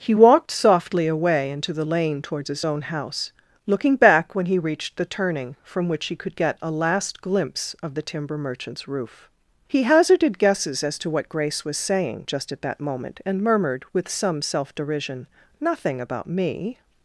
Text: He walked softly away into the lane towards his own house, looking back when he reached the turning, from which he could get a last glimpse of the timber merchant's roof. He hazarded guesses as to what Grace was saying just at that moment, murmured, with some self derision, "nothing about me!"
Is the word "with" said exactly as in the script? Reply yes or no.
yes